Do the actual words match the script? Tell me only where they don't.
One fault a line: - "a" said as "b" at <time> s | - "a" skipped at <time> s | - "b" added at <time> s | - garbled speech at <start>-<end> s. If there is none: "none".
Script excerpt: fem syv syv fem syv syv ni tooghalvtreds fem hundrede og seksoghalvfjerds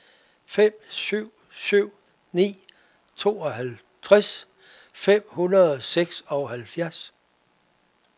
- "fem syv syv" skipped at 1.9 s